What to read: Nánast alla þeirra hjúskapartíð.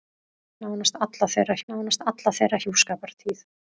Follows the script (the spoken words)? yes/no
no